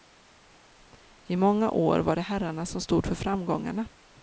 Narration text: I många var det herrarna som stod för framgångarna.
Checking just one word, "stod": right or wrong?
right